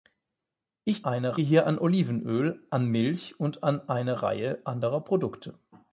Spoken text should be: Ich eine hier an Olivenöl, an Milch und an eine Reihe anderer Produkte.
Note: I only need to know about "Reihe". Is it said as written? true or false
true